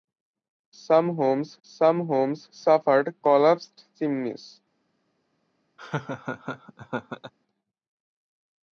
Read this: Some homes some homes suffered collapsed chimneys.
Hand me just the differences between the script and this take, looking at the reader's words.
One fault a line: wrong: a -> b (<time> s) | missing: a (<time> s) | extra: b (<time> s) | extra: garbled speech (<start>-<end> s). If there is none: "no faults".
no faults